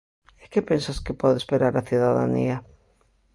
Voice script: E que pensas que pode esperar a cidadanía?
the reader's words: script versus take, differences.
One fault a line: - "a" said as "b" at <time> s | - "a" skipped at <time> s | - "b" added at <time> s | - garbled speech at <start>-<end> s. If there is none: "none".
none